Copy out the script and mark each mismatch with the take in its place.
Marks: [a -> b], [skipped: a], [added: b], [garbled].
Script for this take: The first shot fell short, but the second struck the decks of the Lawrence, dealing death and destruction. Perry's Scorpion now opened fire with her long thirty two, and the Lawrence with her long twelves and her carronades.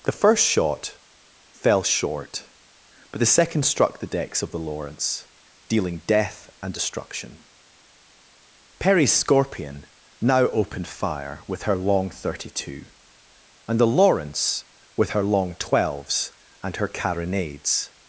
The first shot fell short, but the second struck the decks of the Lawrence, dealing death and destruction. Perry's Scorpion now opened fire with her long thirty two, and the Lawrence with her long twelves and her carronades.